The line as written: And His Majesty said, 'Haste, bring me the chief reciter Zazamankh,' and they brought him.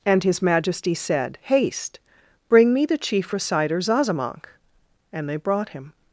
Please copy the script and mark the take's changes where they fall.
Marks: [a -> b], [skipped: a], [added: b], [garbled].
And His Majesty said, 'Haste, bring me the chief reciter Zazamankh,' and they brought him.